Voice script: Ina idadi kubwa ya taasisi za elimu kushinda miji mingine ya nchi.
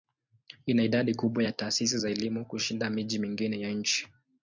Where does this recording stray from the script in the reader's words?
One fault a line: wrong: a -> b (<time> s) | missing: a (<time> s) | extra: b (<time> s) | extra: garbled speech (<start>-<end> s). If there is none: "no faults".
no faults